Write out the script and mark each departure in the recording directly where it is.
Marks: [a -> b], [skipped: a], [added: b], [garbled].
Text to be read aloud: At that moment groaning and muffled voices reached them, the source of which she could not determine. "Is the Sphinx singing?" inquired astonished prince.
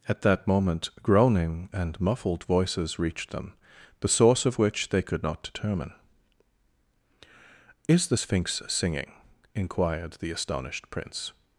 At that moment groaning and muffled voices reached them, the source of which [she -> they] could not determine. "Is the Sphinx singing?" inquired [added: the] astonished prince.